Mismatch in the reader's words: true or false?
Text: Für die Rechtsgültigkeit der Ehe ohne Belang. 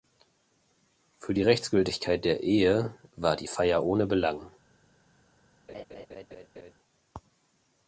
true